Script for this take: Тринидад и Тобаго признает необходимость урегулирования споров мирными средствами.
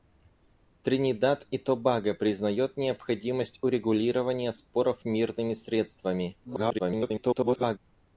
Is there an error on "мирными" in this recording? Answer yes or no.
no